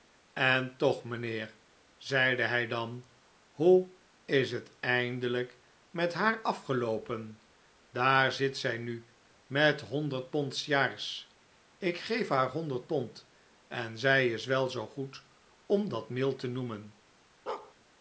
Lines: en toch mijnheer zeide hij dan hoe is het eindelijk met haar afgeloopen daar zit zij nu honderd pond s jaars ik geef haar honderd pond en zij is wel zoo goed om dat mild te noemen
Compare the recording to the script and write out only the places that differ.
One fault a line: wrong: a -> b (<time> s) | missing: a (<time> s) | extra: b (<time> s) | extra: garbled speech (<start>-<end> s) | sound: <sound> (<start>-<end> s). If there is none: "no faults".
extra: met (9.5 s)
sound: bark (17.5-17.7 s)